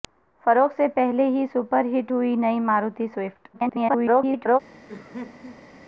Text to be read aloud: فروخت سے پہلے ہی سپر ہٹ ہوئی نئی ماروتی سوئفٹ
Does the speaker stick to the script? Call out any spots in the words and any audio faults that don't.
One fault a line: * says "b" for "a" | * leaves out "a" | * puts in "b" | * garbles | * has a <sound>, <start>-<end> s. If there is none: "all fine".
* garbles
* has a laugh, 4.9-5.7 s